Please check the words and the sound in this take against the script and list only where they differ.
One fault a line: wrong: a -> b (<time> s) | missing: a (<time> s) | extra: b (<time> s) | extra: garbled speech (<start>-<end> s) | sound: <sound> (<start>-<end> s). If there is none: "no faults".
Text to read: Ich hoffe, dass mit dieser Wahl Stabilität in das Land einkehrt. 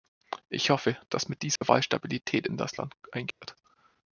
sound: dropout (1.6-1.6 s)
sound: dropout (3.3-3.4 s)